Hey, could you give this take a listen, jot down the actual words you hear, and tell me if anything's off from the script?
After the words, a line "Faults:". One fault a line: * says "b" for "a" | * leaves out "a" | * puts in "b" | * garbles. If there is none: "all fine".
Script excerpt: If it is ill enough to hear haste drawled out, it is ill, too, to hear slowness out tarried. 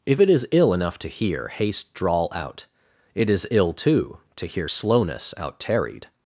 If it is ill enough to hear haste drawl out, it is ill, too, to hear slowness out tarried.
Faults:
* says "drawl" for "drawled"